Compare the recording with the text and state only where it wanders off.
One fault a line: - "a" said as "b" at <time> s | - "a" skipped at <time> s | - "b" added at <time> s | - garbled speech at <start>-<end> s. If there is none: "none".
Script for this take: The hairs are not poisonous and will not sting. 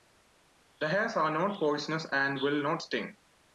none